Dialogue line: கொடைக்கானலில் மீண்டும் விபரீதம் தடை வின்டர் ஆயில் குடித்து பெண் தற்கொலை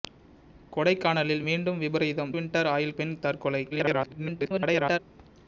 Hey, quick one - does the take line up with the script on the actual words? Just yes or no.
no